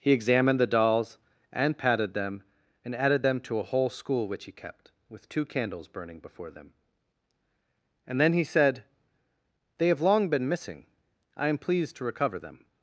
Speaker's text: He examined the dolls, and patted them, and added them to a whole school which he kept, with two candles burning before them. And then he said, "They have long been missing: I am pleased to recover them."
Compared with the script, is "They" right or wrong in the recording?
right